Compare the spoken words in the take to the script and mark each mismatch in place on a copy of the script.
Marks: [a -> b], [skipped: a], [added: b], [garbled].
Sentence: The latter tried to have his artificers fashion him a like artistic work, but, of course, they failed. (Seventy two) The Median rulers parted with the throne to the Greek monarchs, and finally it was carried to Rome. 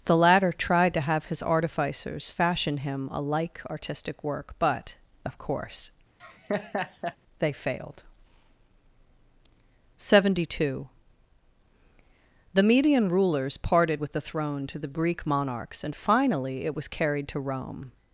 The latter tried to have his artificers fashion him a like artistic work, but, of course, they failed. (Seventy two) The Median rulers parted with the throne to the Greek monarchs, and finally it was carried to Rome.